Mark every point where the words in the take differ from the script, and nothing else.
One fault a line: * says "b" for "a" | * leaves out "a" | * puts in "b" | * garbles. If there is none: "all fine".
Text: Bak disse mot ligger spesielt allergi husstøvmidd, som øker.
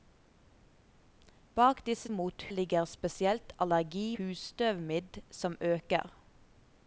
all fine